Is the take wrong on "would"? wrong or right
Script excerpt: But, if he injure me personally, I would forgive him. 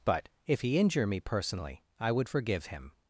right